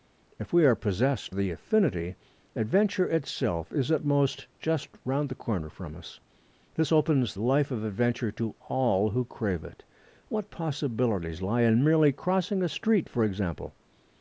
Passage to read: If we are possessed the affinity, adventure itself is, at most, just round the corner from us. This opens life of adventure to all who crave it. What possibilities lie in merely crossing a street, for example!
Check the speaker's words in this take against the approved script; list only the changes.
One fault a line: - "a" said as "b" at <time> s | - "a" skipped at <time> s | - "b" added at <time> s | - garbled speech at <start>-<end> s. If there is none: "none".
none